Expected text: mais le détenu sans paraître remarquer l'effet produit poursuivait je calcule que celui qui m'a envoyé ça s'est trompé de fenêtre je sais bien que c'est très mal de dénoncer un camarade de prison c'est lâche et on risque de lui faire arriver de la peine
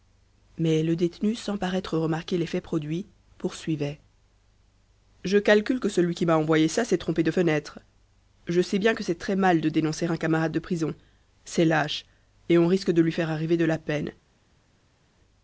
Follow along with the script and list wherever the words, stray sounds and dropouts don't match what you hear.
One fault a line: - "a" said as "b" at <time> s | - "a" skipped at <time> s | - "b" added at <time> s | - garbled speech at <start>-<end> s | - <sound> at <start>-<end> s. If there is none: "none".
none